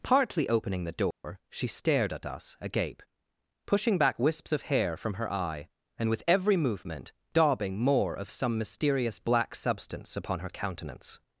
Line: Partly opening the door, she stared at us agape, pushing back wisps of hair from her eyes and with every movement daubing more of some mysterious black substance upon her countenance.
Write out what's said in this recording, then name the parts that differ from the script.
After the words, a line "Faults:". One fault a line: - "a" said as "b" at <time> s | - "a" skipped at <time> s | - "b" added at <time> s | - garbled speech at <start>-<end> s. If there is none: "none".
Partly opening the door, she stared at us agape, pushing back wisps of hair from her eye and with every movement daubing more of some mysterious black substance upon her countenance.
Faults:
- "eyes" said as "eye" at 5.3 s